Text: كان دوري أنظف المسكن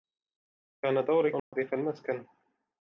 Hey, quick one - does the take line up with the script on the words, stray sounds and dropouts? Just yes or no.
no